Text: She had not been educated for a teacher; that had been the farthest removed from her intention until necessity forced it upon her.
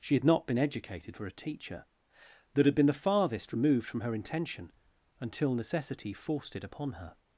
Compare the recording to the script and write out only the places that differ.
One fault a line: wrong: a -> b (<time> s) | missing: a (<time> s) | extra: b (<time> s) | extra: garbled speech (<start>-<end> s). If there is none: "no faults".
no faults